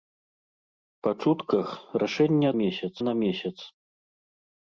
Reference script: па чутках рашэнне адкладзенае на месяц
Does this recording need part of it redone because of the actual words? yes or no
yes